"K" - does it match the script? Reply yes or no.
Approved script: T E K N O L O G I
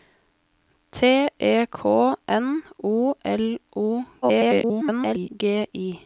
yes